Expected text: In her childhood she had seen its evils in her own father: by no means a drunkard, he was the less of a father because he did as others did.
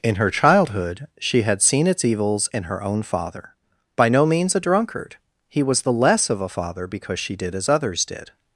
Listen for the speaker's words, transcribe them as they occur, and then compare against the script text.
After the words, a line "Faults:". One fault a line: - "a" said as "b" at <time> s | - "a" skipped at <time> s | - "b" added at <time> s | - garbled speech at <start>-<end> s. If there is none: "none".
In her childhood she had seen its evils in her own father: by no means a drunkard, he was the less of a father because she did as others did.
Faults:
- "he" said as "she" at 7.2 s